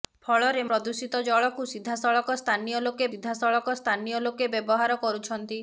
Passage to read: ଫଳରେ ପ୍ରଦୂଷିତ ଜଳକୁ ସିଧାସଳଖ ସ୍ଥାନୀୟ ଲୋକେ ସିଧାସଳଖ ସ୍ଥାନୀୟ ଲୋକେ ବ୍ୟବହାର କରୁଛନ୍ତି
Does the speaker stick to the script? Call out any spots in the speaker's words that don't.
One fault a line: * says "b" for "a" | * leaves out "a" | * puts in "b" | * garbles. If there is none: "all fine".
all fine